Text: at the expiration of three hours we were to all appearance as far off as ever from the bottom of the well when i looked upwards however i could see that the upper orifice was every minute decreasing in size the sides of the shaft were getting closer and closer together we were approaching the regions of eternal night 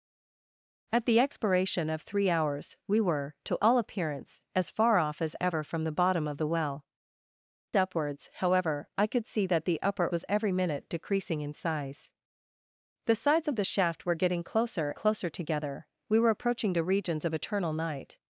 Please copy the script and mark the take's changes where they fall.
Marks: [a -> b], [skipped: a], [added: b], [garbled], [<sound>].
at the expiration of three hours we were to all appearance as far off as ever from the bottom of the well [skipped: when i looked] upwards however i could see that the upper [skipped: orifice] was every minute decreasing in size the sides of the shaft were getting closer [skipped: and] closer together we were approaching the regions of eternal night